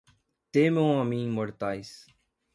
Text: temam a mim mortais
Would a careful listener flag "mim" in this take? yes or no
no